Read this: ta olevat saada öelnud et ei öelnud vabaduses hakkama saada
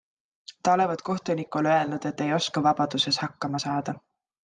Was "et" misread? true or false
false